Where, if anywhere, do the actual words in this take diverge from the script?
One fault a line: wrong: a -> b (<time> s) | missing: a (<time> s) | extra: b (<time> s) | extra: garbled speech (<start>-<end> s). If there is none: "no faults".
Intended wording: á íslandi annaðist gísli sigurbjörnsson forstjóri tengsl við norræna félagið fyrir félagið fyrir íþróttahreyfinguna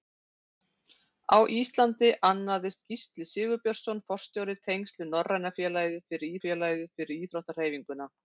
no faults